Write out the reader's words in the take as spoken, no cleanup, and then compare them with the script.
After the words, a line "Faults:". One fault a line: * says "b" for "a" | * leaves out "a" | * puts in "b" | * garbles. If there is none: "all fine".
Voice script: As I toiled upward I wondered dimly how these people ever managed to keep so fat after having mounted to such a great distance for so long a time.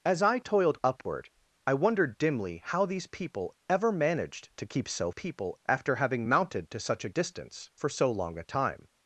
As I toiled upward I wondered dimly how these people ever managed to keep so people after having mounted to such a distance for so long a time.
Faults:
* says "people" for "fat"
* leaves out "great"